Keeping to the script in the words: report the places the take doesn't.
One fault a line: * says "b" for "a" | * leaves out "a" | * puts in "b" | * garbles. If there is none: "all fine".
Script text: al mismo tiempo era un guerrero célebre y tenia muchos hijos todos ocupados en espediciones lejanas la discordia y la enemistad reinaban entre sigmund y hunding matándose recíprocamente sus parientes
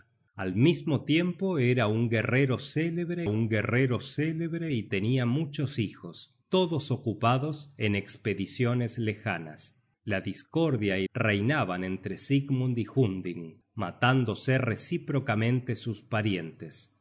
* puts in "un guerrero célebre"
* leaves out "la enemistad"